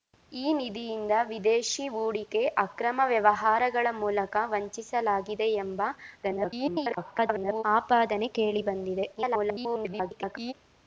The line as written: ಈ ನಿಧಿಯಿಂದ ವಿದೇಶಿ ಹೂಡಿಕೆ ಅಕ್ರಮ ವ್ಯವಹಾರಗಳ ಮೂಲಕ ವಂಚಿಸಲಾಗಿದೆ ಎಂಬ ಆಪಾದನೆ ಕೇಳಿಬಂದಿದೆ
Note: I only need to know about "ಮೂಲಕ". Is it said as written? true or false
true